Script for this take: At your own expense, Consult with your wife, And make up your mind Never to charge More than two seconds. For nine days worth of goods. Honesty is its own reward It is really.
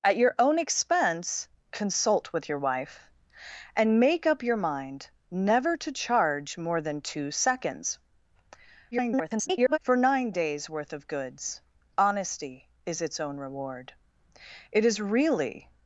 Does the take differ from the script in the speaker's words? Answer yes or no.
yes